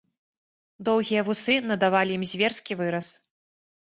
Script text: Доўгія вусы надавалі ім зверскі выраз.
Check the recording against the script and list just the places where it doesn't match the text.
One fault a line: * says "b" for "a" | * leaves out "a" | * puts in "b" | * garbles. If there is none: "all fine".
all fine